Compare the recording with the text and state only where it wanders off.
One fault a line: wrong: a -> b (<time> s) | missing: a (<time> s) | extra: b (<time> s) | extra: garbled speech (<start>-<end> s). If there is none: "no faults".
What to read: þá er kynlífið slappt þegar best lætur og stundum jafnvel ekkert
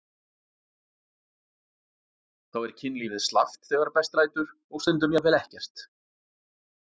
no faults